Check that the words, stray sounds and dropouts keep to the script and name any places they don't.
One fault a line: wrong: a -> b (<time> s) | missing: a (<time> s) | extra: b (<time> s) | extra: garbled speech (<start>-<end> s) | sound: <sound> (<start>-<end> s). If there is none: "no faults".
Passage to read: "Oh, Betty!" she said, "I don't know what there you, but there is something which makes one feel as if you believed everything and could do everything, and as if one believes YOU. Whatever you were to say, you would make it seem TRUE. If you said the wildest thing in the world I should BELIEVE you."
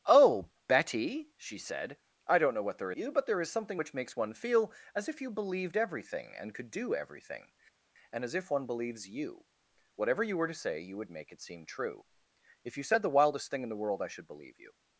no faults